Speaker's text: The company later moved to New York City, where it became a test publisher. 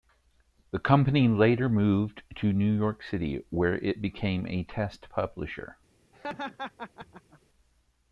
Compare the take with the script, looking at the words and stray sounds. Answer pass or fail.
fail